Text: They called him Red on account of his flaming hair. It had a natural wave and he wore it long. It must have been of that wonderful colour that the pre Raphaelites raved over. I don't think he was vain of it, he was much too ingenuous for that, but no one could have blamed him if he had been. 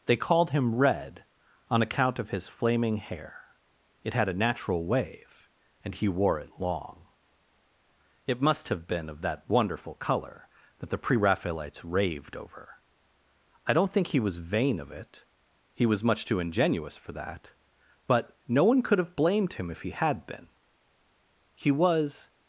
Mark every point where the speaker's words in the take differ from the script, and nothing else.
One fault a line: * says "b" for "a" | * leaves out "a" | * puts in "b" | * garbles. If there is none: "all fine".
* puts in "He was"